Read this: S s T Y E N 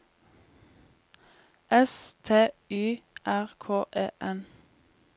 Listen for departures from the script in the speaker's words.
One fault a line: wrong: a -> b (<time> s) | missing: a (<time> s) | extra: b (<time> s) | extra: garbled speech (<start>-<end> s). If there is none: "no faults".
missing: s (2.1 s)
extra: R K (3.3 s)